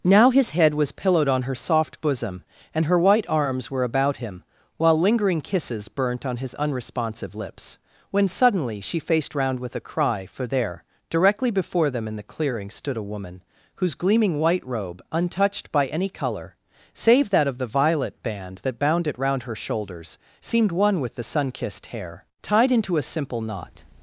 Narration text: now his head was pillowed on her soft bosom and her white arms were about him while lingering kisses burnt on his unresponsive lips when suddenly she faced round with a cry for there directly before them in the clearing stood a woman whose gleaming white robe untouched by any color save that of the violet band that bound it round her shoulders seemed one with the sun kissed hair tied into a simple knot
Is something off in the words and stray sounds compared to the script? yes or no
no